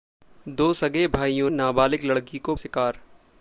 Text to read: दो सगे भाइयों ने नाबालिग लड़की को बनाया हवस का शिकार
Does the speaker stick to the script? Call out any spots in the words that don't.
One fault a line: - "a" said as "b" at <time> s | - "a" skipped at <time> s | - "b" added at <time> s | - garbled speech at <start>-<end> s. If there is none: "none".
- "ने" skipped at 1.5 s
- "बनाया हवस का" skipped at 2.5 s